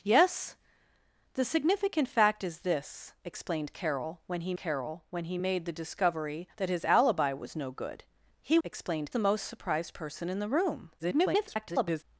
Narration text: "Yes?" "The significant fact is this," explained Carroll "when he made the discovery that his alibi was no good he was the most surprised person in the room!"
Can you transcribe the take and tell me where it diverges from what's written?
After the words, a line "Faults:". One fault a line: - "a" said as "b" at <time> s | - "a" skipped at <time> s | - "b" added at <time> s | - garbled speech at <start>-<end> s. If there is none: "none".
"Yes?" "The significant fact is this," explained Carroll "when he Carroll when he made the discovery that his alibi was no good he explained the most surprised person in the room!" [garbled]
Faults:
- "Carroll when he" added at 4.6 s
- "was" said as "explained" at 8.6 s
- garbled speech at 11.0-12.0 s